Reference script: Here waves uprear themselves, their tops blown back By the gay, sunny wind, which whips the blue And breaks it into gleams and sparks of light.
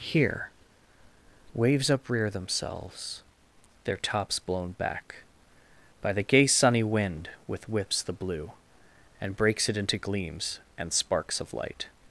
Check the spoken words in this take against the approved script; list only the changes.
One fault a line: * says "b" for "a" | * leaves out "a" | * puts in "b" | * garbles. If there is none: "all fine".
* says "with" for "which"